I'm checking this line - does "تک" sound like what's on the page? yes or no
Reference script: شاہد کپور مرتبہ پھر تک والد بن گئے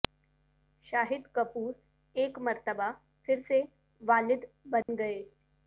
no